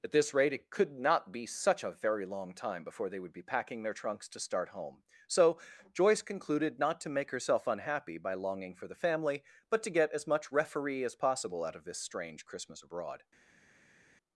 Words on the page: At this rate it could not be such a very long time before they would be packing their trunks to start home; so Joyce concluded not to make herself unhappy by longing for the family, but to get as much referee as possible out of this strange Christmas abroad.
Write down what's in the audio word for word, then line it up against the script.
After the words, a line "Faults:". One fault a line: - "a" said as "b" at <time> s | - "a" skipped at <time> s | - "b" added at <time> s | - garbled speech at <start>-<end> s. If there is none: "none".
At this rate it could not be such a very long time before they would be packing their trunks to start home; so Joyce concluded not to make herself unhappy by longing for the family, but to get as much referee as possible out of this strange Christmas abroad.
Faults:
none